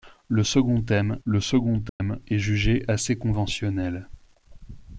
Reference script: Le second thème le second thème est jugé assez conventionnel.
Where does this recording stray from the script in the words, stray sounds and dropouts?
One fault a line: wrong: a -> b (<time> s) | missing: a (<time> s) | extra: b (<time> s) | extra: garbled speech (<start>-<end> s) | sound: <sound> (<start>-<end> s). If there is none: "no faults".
sound: dropout (1.9-2.0 s)